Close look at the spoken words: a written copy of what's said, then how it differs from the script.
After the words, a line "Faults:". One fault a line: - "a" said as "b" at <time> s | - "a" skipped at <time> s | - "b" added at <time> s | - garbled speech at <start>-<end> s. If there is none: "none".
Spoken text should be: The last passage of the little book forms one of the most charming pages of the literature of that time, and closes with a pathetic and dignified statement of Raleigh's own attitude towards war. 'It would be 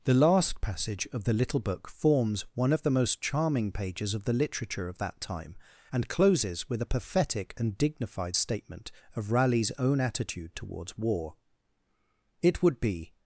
The last passage of the little book forms one of the most charming pages of the literature of that time, and closes with a pathetic and dignified statement of Raleigh's own attitude towards war. 'It would be
Faults:
none